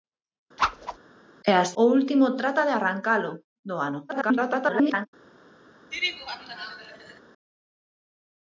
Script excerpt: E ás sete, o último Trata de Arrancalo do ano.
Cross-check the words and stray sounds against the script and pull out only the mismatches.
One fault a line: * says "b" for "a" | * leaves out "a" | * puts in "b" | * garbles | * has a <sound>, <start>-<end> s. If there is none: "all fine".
* has a whoosh, 0.6-1.0 s
* leaves out "sete"
* garbles
* has a laugh, 5.9-7.2 s